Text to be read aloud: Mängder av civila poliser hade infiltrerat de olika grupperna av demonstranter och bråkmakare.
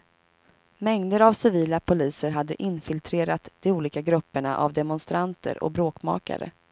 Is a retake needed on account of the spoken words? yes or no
no